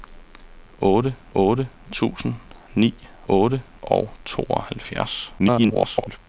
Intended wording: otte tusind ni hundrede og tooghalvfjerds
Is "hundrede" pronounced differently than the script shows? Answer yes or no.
yes